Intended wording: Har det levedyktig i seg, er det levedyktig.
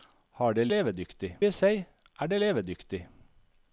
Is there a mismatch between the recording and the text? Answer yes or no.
no